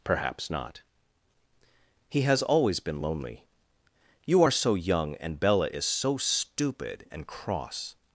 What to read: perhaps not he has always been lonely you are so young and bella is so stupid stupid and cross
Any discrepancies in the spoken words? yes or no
yes